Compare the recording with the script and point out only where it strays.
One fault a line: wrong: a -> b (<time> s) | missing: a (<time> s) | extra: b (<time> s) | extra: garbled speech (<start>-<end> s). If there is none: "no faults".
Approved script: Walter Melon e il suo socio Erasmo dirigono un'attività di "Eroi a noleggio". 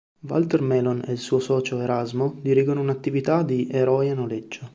no faults